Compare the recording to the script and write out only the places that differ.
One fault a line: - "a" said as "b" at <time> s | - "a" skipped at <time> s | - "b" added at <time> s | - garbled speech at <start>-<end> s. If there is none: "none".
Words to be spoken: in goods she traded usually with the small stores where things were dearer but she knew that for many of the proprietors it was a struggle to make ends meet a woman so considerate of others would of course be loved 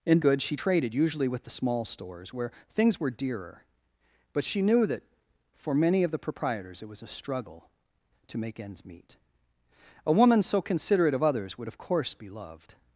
none